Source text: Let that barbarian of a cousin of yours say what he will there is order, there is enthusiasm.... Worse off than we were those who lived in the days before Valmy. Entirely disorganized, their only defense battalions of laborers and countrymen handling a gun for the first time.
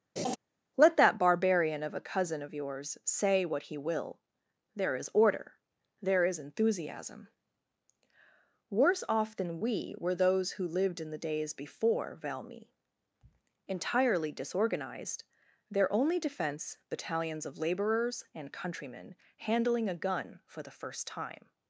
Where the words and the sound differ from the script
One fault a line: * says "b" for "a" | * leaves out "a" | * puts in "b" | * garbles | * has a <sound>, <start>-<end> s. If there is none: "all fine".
* has a laugh, 0.2-0.4 s